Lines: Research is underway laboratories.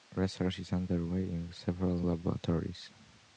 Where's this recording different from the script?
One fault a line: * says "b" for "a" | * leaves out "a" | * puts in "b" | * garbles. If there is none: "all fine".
* puts in "in several"